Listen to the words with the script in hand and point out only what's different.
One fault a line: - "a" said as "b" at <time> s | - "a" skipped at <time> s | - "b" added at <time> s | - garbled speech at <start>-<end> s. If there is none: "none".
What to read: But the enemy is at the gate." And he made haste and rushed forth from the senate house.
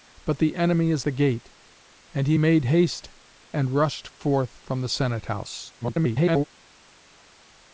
- "at" skipped at 1.1 s
- garbled speech at 5.8-6.4 s